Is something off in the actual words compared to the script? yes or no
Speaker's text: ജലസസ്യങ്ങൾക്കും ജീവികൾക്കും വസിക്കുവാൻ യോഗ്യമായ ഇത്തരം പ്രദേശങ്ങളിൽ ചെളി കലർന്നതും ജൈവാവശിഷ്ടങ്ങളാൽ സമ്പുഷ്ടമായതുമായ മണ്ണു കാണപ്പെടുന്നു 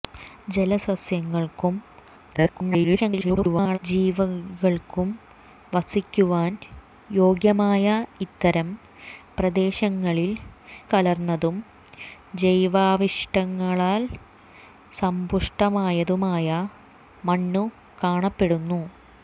yes